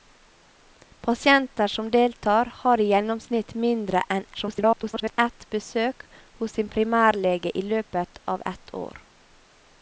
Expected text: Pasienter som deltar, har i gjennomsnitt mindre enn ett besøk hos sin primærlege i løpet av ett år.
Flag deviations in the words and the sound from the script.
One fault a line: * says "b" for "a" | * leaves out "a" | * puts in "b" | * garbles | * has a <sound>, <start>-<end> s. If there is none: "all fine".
* garbles